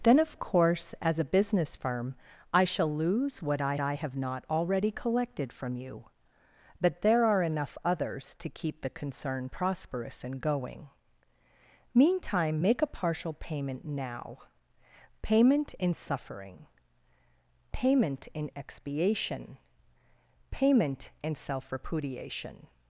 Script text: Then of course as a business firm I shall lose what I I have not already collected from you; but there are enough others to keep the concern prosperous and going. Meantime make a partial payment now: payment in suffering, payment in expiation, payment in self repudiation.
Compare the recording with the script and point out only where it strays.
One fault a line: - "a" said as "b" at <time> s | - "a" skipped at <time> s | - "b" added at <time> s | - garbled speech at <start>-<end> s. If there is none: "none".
none